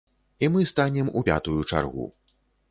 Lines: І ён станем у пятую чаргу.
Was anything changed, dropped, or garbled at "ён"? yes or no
yes